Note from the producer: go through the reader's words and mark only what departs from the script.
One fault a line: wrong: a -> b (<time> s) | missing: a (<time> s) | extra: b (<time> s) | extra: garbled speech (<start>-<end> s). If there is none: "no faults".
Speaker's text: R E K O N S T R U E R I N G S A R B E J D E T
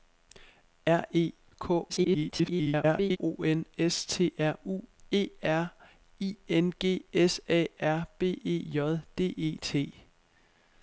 extra: garbled speech (1.9-3.2 s)